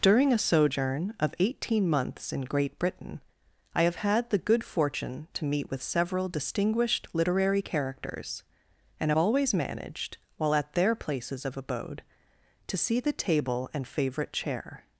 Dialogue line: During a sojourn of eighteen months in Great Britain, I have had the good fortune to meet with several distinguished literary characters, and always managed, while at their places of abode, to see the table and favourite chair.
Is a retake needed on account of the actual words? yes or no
no